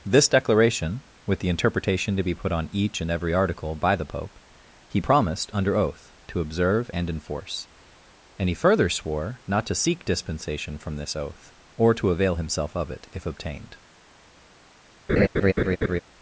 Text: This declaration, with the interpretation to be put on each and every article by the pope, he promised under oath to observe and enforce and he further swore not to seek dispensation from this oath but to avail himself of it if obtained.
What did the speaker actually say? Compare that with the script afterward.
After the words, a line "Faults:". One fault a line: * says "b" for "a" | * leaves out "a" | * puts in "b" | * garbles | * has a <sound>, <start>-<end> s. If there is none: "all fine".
This declaration, with the interpretation to be put on each and every article by the pope, he promised under oath to observe and enforce and he further swore not to seek dispensation from this oath or to avail himself of it if obtained.
Faults:
* says "or" for "but"
* has a laugh, 15.1-16.0 s